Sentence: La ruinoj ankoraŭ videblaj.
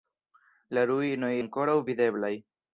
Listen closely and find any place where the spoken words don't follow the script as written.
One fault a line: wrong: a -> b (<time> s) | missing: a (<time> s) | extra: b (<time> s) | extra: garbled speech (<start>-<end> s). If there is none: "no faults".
no faults